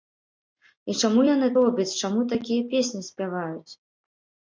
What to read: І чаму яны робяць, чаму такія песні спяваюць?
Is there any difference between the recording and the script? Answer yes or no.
no